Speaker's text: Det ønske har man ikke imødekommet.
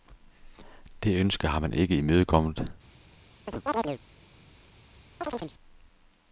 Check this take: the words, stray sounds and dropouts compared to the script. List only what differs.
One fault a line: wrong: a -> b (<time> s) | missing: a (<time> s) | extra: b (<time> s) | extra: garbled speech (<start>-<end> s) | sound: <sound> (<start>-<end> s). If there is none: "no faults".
sound: chirp (3.5-4.0 s)
sound: chirp (5.2-5.5 s)